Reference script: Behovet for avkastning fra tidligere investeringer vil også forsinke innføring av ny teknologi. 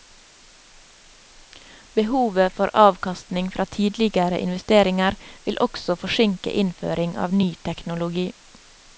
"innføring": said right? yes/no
yes